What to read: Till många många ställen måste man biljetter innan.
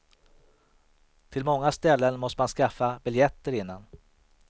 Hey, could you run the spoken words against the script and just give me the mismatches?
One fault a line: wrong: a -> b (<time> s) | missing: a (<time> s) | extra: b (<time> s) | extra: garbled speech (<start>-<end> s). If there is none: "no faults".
missing: många (1.7 s)
extra: skaffa (2.5 s)